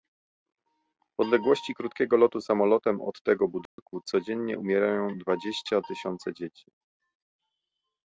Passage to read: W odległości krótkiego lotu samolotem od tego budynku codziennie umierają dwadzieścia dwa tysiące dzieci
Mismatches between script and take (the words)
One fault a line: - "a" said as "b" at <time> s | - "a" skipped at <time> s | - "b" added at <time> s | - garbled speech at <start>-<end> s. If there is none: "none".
- "dwa" skipped at 5.8 s